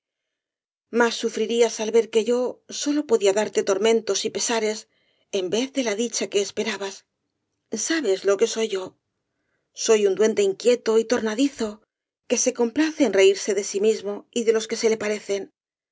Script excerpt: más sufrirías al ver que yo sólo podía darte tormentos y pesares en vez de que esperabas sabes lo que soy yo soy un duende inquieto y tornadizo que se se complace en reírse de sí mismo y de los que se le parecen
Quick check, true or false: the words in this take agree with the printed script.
false